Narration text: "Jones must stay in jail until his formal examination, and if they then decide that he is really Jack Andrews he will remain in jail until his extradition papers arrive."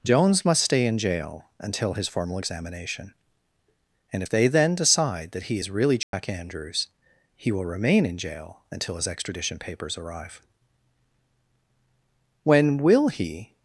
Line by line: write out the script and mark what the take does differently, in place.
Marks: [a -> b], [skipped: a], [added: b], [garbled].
"Jones must stay in jail until his formal examination, and if they then decide that he is really Jack Andrews he will remain in jail until his extradition papers arrive." [added: When will he]